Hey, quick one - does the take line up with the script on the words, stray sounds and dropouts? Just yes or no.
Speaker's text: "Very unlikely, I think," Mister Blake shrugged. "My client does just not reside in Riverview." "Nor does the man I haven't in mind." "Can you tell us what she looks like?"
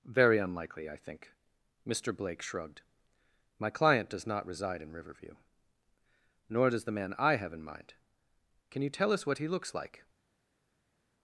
no